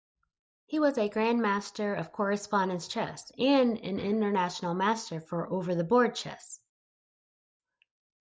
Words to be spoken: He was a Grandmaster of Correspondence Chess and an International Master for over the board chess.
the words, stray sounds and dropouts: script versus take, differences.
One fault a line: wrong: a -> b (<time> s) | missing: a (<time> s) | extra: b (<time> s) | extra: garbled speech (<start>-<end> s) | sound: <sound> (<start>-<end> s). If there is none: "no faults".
no faults